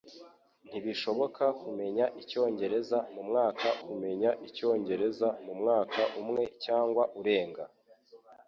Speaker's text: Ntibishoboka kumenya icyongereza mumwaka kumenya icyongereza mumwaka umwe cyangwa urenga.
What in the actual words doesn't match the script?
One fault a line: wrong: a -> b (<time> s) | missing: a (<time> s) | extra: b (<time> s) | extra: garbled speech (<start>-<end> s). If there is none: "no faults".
no faults